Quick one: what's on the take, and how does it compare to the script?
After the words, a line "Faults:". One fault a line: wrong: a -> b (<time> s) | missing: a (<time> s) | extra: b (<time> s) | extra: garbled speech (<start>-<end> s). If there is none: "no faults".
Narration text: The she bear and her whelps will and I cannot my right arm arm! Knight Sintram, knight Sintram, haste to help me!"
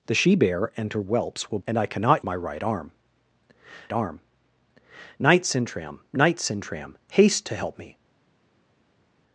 The she bear and her whelps will and I cannot my right arm arm! Knight Sintram, knight Sintram, haste to help me!"
Faults:
no faults